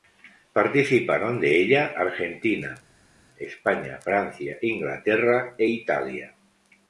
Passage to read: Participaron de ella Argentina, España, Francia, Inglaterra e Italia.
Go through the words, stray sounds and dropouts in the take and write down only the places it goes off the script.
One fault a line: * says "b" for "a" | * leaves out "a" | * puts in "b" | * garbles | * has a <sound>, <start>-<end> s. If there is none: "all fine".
all fine